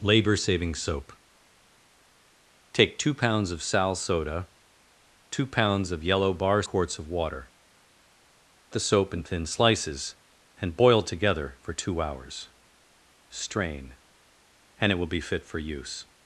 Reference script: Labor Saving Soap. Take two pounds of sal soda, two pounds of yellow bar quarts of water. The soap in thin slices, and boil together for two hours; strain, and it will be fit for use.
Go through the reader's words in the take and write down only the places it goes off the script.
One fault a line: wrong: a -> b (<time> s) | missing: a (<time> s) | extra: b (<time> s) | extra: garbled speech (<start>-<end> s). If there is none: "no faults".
no faults